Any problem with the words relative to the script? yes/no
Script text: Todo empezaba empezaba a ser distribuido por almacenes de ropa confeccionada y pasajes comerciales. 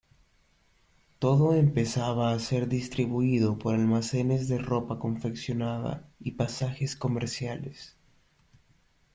yes